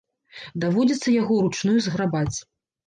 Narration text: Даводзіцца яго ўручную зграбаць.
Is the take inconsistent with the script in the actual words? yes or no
no